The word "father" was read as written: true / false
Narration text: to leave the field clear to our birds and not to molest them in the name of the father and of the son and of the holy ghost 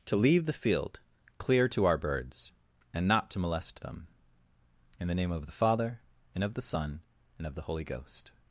true